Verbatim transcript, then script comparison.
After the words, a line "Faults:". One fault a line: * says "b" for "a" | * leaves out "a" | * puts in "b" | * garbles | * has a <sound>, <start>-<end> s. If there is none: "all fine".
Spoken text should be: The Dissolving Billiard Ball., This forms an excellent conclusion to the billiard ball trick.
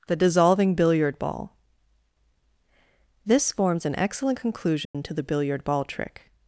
The Dissolving Billiard Ball., This forms an excellent conclusion to the billiard ball trick.
Faults:
* has a dropout, 4.8-4.9 s